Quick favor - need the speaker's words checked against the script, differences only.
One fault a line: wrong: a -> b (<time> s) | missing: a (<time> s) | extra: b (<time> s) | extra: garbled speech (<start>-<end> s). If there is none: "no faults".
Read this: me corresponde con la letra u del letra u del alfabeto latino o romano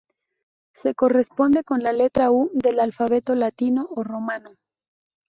wrong: me -> se (0.7 s)
missing: letra u del (2.8 s)